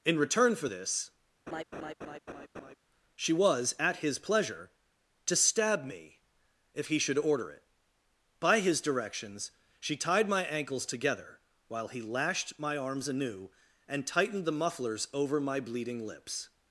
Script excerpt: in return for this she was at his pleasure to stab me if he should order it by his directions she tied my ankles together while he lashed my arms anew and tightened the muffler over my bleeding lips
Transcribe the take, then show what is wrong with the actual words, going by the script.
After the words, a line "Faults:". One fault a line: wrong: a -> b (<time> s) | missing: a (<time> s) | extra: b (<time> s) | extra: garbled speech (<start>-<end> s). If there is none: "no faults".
in return for this she was at his pleasure to stab me if he should order it by his directions she tied my ankles together while he lashed my arms anew and tightened the mufflers over my bleeding lips
Faults:
wrong: muffler -> mufflers (14.5 s)